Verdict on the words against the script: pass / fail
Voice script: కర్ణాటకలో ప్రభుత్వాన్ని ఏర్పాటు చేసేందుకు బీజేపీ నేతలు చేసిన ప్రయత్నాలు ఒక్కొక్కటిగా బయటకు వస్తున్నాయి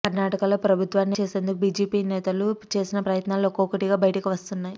fail